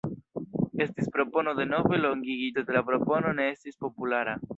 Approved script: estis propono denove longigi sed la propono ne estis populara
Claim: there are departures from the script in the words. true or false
false